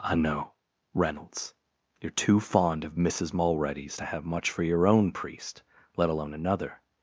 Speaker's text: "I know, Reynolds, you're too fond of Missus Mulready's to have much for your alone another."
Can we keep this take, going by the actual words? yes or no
no